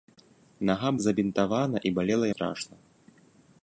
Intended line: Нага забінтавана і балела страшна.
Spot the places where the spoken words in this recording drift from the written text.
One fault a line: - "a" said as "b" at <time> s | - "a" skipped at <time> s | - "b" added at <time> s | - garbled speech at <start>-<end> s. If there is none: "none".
none